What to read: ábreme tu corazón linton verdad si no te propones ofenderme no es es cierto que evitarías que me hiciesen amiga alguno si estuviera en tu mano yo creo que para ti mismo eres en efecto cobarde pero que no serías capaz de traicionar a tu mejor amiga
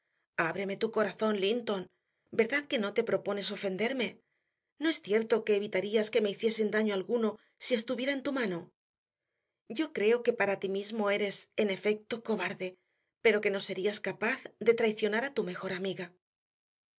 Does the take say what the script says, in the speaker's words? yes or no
no